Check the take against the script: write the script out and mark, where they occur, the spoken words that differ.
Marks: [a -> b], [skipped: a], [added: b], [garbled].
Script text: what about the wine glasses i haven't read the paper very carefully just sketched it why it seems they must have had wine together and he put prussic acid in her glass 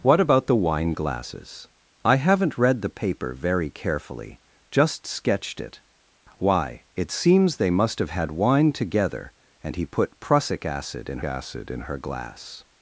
what about the wine glasses i haven't read the paper very carefully just sketched it why it seems they must have had wine together and he put prussic acid in [added: acid in] her glass